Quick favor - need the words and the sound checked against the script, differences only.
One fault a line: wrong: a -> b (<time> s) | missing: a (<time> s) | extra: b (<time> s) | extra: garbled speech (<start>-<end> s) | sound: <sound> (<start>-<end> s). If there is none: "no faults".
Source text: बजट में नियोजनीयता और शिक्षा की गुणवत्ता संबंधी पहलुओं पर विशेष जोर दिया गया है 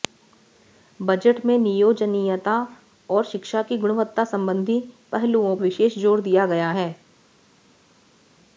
missing: पर (5.5 s)